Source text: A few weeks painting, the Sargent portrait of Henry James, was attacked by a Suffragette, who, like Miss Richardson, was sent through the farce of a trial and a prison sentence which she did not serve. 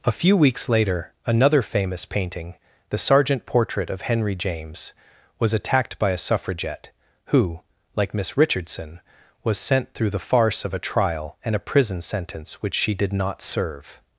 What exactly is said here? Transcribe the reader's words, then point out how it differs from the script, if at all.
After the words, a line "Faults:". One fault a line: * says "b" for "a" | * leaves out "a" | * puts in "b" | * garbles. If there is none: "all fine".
A few weeks later another famous painting, the Sargent portrait of Henry James, was attacked by a Suffragette, who, like Miss Richardson, was sent through the farce of a trial and a prison sentence which she did not serve.
Faults:
* puts in "later another famous"